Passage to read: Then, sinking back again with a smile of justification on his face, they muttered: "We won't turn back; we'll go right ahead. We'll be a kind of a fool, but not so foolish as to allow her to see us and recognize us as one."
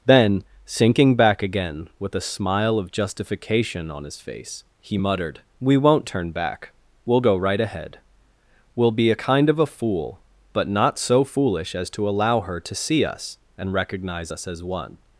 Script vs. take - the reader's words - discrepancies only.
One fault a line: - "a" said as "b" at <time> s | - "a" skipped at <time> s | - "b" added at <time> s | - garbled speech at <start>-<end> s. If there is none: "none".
- "they" said as "he" at 4.8 s